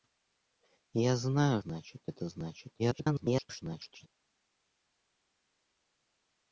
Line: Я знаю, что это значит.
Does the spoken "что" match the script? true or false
false